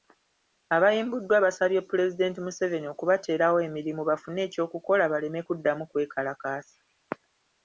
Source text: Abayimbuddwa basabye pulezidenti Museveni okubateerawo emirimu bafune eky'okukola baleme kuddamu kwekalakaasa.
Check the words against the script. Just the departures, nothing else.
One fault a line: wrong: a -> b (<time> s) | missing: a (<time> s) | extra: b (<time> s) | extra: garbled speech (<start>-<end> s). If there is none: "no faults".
no faults